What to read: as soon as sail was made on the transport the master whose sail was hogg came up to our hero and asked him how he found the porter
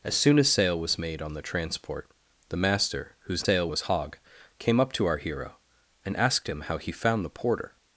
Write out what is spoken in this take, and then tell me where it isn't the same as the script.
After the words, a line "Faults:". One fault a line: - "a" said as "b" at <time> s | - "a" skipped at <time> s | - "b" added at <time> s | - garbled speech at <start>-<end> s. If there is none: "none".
as soon as sail was made on the transport the master whose sail was hogg came up to our hero and asked him how he found the porter
Faults:
none